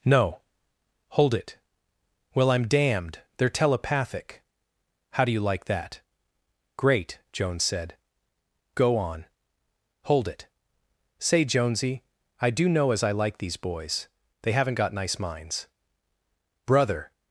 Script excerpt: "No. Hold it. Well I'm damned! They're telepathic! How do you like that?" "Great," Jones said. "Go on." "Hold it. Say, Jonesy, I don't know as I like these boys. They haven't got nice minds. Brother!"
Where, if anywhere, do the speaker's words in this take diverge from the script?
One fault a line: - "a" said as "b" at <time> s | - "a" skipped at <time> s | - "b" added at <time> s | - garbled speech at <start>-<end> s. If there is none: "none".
- "don't" said as "do" at 12.5 s